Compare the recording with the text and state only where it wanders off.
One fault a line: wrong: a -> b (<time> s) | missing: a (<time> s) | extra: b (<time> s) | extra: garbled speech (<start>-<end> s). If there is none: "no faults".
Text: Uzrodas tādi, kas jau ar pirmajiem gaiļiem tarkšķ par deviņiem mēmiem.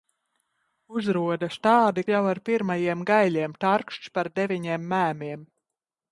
missing: kas (2.0 s)